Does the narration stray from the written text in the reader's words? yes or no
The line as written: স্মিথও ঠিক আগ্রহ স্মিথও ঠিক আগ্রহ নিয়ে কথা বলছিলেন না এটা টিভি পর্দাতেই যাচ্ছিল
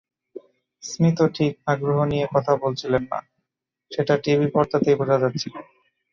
yes